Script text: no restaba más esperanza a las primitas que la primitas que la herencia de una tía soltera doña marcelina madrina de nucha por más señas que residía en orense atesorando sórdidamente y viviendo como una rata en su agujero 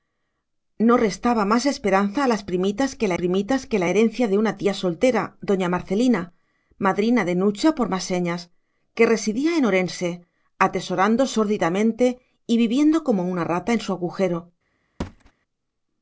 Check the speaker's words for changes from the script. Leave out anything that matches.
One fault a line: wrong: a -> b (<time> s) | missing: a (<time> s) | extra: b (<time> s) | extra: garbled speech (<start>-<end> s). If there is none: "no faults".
no faults